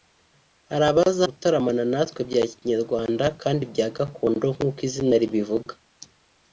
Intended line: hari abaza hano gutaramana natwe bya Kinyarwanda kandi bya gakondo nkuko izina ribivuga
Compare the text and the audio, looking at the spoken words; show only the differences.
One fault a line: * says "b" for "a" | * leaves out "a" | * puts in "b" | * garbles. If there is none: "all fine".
* leaves out "hano"